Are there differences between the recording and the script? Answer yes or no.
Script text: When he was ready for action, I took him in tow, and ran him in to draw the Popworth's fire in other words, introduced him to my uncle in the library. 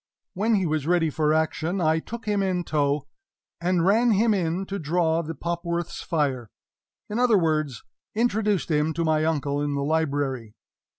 no